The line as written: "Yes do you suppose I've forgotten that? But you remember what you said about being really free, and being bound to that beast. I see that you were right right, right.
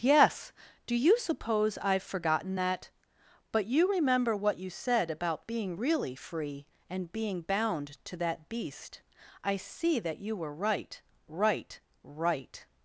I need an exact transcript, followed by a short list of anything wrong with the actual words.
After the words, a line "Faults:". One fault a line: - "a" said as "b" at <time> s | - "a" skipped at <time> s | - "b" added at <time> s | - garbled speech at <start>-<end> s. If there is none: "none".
"Yes do you suppose I've forgotten that? But you remember what you said about being really free, and being bound to that beast. I see that you were right right, right.
Faults:
none